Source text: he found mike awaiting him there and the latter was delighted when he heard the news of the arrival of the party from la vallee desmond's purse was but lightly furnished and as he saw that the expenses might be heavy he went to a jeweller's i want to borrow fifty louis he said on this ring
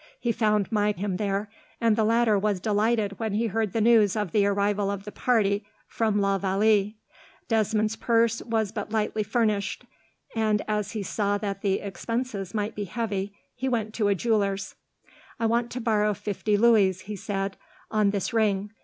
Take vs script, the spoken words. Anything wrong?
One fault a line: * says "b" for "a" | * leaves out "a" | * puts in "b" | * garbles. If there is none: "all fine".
* leaves out "awaiting"